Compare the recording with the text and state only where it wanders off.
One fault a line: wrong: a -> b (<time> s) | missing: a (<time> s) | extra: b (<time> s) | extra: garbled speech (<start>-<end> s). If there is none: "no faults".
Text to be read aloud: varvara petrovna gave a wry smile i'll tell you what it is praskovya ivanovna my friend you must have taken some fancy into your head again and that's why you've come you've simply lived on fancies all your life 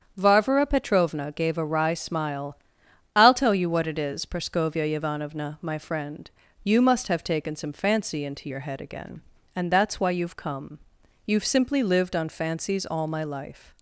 wrong: your -> my (13.1 s)